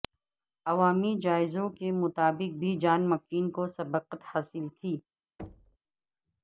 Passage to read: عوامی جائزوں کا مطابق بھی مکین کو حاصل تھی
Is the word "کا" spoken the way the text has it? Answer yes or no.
no